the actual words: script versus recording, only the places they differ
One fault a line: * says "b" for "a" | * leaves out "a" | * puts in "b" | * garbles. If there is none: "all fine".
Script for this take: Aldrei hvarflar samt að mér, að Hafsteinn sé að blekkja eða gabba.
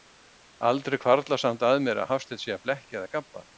all fine